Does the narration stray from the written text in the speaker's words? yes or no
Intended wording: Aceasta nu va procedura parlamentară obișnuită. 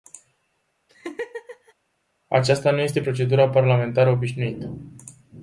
yes